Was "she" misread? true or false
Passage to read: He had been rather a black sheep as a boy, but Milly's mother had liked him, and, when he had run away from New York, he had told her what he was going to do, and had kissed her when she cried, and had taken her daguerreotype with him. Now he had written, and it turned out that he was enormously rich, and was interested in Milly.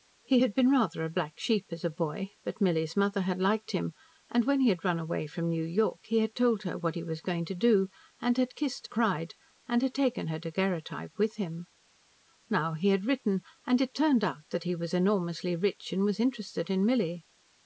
true